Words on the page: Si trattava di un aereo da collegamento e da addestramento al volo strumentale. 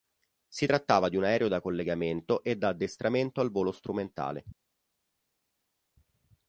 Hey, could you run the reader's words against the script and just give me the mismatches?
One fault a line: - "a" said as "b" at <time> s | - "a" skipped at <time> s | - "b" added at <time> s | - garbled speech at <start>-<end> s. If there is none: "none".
none